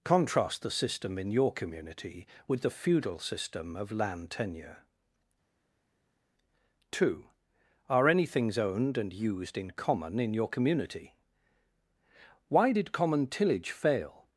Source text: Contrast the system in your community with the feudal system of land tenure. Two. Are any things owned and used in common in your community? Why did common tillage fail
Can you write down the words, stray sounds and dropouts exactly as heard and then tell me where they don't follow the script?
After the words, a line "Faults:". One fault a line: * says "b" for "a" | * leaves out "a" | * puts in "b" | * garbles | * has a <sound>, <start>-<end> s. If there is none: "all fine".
Contrast the system in your community with the feudal system of land tenure. Two. Are any things owned and used in common in your community? Why did common tillage fail
Faults:
all fine